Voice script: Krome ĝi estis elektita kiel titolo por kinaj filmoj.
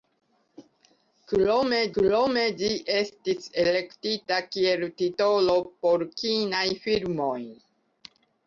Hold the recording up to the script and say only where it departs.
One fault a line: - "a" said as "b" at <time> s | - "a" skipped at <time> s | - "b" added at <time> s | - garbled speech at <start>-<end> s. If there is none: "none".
- "krome" added at 2.0 s